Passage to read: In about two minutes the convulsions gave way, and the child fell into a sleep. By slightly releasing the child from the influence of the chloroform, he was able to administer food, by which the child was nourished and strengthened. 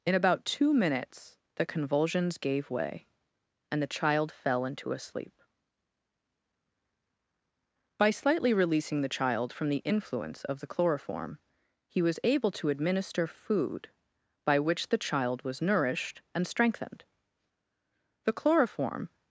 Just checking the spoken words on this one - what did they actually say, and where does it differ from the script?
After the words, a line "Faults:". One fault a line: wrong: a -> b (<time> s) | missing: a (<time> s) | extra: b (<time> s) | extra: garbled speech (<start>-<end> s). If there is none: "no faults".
In about two minutes the convulsions gave way, and the child fell into a sleep. By slightly releasing the child from the influence of the chloroform, he was able to administer food, by which the child was nourished and strengthened. The chloroform
Faults:
extra: The chloroform (18.2 s)